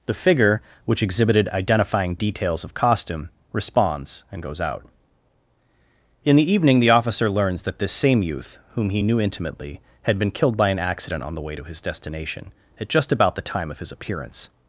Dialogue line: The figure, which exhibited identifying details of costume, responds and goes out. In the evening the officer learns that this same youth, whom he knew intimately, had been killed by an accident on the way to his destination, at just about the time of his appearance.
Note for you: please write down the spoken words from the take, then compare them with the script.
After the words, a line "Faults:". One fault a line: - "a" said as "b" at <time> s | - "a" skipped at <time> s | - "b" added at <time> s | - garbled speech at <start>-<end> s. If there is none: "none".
The figure, which exhibited identifying details of costume, responds and goes out. In the evening the officer learns that this same youth, whom he knew intimately, had been killed by an accident on the way to his destination, at just about the time of his appearance.
Faults:
none